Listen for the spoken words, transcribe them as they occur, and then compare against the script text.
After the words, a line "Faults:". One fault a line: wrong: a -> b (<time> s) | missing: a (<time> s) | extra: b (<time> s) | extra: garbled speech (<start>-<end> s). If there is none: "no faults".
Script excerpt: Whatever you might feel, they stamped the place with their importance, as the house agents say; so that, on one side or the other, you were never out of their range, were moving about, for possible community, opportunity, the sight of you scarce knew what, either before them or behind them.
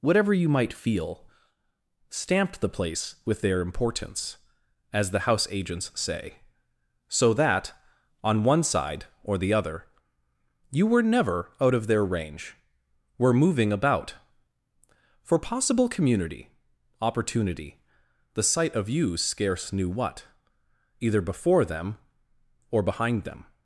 Whatever you might feel, stamped the place with their importance, as the house agents say; so that, on one side or the other, you were never out of their range, were moving about, for possible community, opportunity, the sight of you scarce knew what, either before them or behind them.
Faults:
missing: they (1.3 s)